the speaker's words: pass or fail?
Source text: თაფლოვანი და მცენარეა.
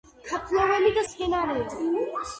pass